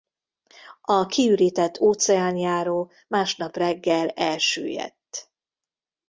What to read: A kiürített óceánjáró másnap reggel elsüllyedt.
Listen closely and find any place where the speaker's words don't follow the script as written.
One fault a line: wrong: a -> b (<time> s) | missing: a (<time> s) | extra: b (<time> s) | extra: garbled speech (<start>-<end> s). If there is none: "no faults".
no faults